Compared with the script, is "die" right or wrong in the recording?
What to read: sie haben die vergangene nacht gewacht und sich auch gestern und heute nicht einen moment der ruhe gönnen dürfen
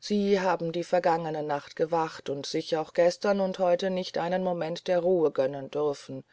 right